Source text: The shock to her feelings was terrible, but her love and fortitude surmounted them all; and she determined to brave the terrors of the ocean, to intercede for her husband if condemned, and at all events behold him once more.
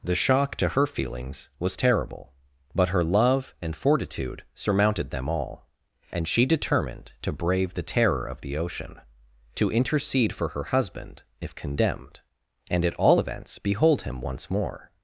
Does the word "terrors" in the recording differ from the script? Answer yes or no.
yes